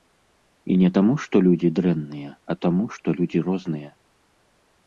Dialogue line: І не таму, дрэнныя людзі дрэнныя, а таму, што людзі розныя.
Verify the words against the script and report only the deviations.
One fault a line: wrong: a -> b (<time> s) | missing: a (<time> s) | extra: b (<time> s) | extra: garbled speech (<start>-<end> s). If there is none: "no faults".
wrong: дрэнныя -> што (1.2 s)